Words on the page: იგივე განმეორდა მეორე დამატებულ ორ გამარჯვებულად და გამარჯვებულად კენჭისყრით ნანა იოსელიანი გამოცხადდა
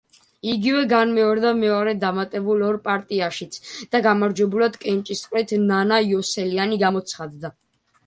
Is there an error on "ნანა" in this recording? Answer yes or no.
no